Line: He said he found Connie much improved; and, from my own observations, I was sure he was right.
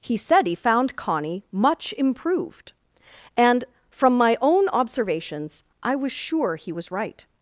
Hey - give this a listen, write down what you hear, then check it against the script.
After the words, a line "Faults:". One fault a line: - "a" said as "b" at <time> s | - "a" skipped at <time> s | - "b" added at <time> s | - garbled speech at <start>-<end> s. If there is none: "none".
He said he found Connie much improved; and, from my own observations, I was sure he was right.
Faults:
none